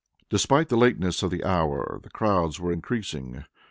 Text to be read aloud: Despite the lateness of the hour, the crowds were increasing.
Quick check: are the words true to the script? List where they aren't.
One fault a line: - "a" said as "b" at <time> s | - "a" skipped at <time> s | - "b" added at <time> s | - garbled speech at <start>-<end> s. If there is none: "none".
none